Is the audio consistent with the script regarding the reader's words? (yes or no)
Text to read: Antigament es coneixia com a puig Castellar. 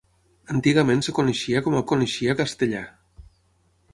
no